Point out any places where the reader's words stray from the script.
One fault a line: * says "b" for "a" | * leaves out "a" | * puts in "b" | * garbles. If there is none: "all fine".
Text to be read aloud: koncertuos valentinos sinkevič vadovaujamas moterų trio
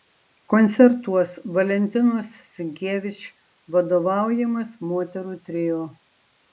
all fine